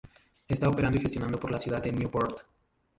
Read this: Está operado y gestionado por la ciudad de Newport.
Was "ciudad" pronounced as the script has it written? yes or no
yes